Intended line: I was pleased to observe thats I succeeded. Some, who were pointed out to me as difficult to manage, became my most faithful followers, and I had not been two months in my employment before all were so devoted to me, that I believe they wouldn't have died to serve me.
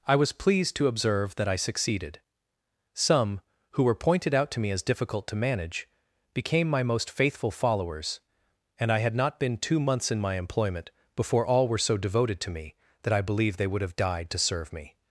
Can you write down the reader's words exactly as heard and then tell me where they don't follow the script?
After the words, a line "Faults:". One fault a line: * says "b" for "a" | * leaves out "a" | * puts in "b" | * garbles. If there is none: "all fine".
I was pleased to observe that I succeeded. Some, who were pointed out to me as difficult to manage, became my most faithful followers, and I had not been two months in my employment before all were so devoted to me, that I believe they would have died to serve me.
Faults:
* says "that" for "thats"
* says "would" for "wouldn't"